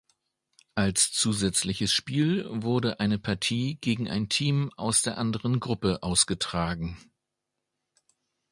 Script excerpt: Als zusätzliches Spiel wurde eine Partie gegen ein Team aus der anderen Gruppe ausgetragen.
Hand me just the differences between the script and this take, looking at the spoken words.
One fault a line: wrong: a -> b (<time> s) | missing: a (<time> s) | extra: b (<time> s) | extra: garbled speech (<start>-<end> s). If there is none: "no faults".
no faults